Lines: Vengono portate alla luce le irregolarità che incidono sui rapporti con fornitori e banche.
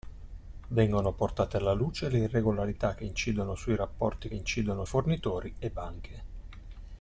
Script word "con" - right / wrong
wrong